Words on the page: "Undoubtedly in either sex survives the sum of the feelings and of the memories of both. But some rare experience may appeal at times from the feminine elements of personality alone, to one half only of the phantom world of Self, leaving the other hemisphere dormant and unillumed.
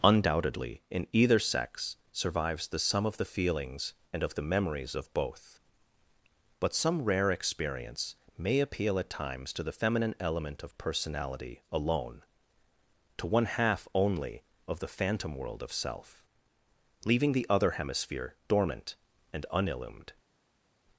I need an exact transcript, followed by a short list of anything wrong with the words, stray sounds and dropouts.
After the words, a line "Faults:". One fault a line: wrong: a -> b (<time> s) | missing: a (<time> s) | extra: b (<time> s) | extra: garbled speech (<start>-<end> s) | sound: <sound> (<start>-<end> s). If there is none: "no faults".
"Undoubtedly in either sex survives the sum of the feelings and of the memories of both. But some rare experience may appeal at times to the feminine element of personality alone, to one half only of the phantom world of Self, leaving the other hemisphere dormant and unillumed.
Faults:
wrong: from -> to (9.5 s)
wrong: elements -> element (10.2 s)